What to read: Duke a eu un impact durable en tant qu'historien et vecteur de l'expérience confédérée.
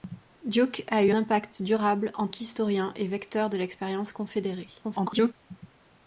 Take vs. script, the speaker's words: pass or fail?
fail